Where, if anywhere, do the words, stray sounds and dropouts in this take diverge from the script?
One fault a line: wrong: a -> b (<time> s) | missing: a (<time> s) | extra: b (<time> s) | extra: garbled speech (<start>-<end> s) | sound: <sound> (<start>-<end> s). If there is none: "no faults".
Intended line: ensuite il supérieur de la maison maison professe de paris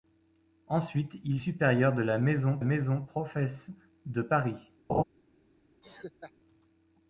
sound: laugh (4.9-5.0 s)
sound: laugh (5.8-6.3 s)